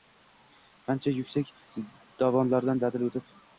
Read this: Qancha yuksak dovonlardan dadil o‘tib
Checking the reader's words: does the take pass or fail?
pass